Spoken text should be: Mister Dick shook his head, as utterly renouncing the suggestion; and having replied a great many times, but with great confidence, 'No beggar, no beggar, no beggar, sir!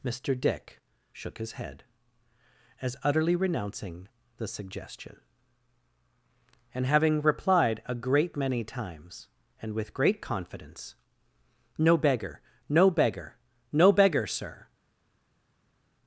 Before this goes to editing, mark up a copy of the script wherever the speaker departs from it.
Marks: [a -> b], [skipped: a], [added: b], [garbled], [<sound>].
Mister Dick shook his head, as utterly renouncing the suggestion; and having replied a great many times, [but -> and] with great confidence, 'No beggar, no beggar, no beggar, sir!